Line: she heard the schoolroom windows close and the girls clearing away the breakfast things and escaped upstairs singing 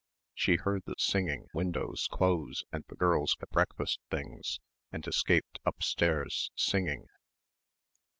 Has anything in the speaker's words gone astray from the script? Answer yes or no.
yes